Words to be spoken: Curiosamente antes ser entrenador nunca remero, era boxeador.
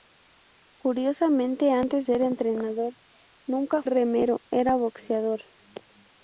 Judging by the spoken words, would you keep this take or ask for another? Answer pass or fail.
pass